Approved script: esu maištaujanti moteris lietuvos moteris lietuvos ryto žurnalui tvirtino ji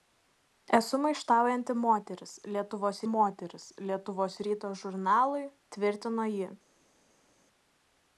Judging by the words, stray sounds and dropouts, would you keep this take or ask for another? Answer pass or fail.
pass